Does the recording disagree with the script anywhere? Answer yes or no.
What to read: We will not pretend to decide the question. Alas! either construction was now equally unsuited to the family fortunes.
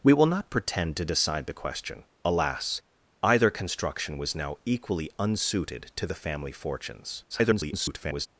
yes